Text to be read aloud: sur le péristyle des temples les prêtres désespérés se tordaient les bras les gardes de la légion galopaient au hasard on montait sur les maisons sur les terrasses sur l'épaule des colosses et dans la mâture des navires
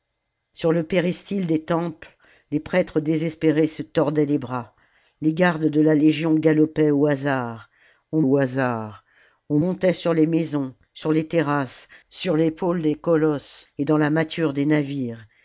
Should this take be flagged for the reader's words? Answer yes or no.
yes